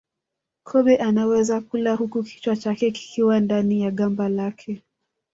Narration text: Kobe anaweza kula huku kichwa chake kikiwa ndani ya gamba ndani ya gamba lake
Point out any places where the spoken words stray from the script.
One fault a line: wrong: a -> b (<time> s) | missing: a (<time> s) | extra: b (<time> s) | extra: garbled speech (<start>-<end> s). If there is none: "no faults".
missing: ndani ya gamba (4.3 s)